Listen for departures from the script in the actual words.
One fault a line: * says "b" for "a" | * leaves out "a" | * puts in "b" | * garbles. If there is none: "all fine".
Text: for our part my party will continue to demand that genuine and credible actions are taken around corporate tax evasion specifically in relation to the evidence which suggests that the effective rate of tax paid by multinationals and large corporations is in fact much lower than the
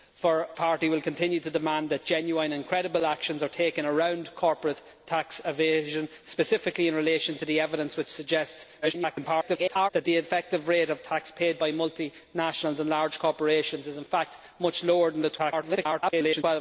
* leaves out "our part my"
* garbles
* garbles